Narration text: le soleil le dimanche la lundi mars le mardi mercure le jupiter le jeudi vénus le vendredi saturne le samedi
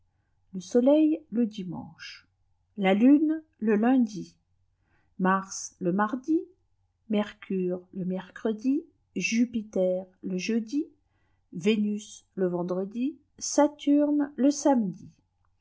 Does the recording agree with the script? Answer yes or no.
no